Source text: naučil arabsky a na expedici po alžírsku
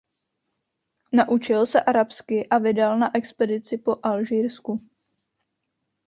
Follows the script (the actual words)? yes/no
no